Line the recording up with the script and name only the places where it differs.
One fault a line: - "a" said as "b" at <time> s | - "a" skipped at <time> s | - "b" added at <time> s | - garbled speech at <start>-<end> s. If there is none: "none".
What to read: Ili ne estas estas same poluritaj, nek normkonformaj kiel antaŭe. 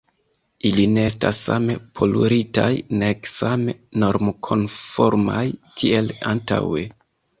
- "estas" skipped at 1.4 s
- "same" added at 3.3 s